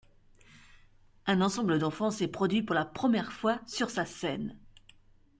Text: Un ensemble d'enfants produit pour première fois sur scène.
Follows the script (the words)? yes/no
no